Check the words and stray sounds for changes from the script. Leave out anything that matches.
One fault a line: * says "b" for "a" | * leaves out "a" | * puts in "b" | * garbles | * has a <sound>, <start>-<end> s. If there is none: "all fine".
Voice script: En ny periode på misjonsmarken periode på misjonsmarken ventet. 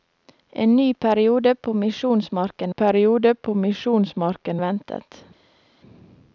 all fine